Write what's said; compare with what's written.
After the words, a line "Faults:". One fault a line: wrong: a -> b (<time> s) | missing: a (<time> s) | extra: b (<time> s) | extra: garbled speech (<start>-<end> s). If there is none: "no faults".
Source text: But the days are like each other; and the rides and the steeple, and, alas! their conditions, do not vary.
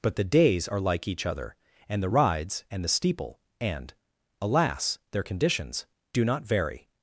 But the days are like each other; and the rides and the steeple, and, alas! their conditions, do not vary.
Faults:
no faults